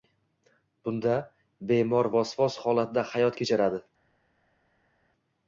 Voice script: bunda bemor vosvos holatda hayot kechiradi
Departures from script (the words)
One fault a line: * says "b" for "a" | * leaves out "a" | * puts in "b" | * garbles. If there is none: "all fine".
all fine